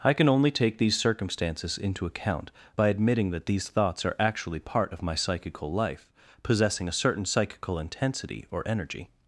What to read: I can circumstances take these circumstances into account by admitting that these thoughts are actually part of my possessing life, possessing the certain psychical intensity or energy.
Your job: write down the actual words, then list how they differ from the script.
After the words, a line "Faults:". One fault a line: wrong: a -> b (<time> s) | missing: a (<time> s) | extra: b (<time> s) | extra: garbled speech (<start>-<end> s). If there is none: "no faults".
I can only take these circumstances into account by admitting that these thoughts are actually part of my psychical life, possessing a certain psychical intensity or energy.
Faults:
wrong: circumstances -> only (0.3 s)
wrong: possessing -> psychical (5.1 s)
wrong: the -> a (6.9 s)